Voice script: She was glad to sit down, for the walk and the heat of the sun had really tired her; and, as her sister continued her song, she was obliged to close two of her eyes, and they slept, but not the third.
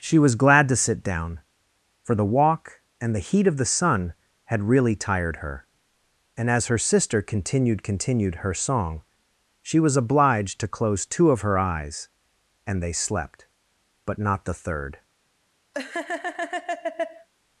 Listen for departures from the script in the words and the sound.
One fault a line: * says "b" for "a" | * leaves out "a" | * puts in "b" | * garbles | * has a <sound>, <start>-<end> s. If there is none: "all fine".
* puts in "continued"
* has a laugh, 15.7-17.3 s